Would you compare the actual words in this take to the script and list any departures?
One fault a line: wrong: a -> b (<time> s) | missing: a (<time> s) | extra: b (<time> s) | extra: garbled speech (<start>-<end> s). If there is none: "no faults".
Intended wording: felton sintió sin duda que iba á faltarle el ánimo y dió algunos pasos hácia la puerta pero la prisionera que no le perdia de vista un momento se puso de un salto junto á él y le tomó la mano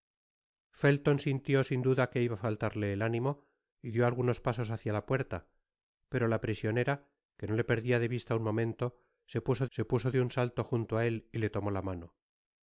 extra: se puso (9.7 s)